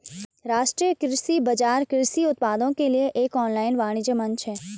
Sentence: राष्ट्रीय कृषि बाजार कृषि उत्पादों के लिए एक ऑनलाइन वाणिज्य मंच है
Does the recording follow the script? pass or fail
pass